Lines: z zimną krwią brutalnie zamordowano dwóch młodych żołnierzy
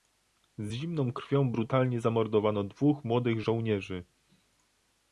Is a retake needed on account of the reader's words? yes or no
no